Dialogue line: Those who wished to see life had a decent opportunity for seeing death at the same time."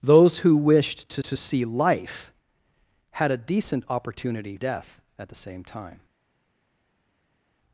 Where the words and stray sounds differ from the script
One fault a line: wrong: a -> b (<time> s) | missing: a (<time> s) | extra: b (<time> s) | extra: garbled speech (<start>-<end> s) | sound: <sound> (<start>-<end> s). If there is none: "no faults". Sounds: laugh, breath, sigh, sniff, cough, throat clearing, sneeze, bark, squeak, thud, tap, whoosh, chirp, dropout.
extra: to (1.2 s)
missing: for seeing (4.5 s)